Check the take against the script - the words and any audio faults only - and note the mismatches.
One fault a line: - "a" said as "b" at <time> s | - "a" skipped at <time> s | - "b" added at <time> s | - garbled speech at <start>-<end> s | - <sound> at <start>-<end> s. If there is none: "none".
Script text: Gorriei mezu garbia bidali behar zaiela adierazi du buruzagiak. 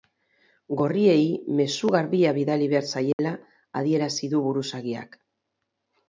- dropout at 3.1-3.2 s